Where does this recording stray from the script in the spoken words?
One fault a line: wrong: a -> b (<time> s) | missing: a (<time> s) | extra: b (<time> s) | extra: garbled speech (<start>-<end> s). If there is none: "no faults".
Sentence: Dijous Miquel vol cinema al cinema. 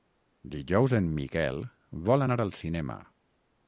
extra: en (1.0 s)
wrong: cinema -> anar (2.3 s)